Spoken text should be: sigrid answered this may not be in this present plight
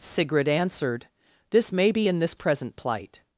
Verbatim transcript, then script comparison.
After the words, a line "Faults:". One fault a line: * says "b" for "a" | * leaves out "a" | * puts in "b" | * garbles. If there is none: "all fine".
sigrid answered this may be in this present plight
Faults:
* leaves out "not"